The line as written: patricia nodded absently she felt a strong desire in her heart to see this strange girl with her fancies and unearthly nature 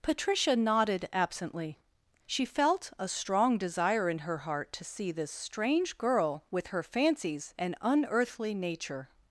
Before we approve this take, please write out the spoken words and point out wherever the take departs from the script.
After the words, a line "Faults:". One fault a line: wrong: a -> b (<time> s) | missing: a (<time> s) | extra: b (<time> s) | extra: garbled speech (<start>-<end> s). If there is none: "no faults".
patricia nodded absently she felt a strong desire in her heart to see this strange girl with her fancies and unearthly nature
Faults:
no faults